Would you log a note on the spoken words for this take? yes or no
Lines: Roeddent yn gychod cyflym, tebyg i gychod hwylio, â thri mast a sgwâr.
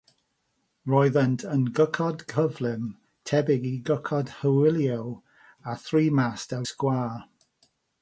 no